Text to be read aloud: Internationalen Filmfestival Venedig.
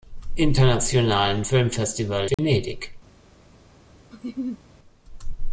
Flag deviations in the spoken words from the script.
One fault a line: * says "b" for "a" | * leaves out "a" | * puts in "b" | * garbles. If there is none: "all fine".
all fine